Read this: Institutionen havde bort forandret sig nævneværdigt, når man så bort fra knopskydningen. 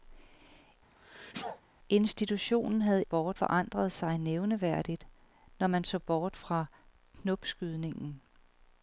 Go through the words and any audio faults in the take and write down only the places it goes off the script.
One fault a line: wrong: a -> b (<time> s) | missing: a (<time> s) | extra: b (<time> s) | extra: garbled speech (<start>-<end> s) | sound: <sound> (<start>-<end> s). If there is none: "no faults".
sound: sneeze (0.9-1.6 s)